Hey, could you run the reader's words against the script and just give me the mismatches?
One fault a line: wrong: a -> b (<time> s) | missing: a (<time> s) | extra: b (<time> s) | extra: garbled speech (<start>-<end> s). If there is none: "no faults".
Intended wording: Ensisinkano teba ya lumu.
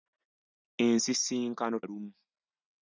missing: teba ya (1.8 s)